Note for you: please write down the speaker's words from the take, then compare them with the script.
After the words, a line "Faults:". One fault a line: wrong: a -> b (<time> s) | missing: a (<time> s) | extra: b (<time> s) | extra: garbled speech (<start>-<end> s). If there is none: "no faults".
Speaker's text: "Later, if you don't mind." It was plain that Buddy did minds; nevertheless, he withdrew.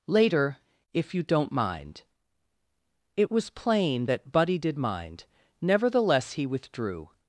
"Later, if you don't mind." It was plain that Buddy did mind; nevertheless, he withdrew.
Faults:
wrong: minds -> mind (4.8 s)